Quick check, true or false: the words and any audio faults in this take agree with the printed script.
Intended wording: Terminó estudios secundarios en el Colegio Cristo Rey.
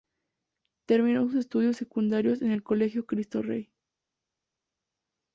false